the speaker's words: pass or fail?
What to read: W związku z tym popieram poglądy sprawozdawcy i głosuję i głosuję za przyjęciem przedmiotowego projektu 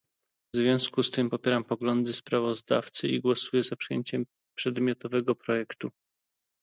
fail